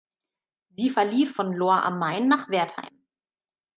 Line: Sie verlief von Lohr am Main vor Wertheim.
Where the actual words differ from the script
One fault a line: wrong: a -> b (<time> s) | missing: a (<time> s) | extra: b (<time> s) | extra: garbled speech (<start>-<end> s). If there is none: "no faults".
wrong: vor -> nach (2.3 s)